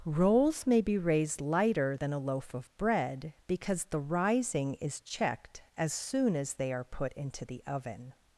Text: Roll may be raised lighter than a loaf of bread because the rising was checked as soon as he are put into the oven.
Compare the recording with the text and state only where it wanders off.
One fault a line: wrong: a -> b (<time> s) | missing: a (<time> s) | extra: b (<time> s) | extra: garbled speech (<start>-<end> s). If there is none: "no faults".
wrong: Roll -> Rolls (0.0 s)
wrong: was -> is (4.7 s)
wrong: he -> they (6.5 s)